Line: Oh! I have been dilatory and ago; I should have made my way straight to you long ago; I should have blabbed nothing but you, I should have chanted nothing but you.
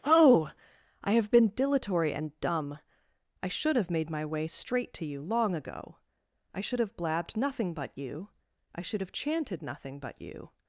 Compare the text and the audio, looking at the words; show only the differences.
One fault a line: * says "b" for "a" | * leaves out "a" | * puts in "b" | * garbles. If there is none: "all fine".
* says "dumb" for "ago"